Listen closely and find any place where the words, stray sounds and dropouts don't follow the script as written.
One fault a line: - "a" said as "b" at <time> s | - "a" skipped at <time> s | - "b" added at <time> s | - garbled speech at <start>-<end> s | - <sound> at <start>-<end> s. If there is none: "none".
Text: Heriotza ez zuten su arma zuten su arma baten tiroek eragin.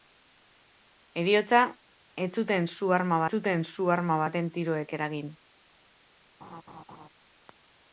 - laugh at 6.4-7.1 s